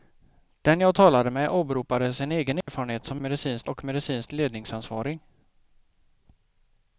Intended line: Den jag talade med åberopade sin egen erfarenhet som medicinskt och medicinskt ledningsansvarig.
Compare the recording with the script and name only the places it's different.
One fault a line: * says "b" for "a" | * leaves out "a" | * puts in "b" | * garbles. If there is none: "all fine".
all fine